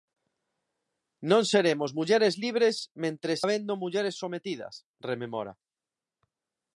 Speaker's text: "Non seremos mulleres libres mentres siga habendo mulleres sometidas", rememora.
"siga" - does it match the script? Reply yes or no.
no